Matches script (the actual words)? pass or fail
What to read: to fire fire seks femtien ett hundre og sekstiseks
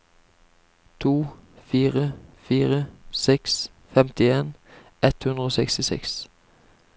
pass